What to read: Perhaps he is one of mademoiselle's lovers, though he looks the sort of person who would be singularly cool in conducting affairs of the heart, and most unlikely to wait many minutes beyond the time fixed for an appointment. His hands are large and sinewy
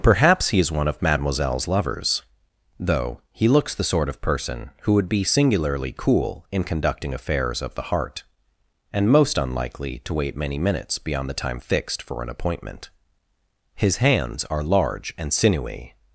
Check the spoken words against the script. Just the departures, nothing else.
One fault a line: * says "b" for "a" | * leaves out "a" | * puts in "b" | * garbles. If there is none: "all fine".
all fine